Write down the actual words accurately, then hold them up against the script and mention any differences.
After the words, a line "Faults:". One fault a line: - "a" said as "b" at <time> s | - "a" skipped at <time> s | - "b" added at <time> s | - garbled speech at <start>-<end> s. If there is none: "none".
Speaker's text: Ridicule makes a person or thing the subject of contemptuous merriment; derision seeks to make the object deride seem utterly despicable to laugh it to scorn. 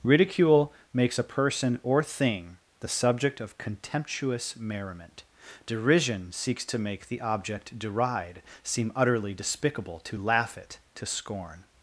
Ridicule makes a person or thing the subject of contemptuous merriment; derision seeks to make the object deride seem utterly despicable to laugh it to scorn.
Faults:
none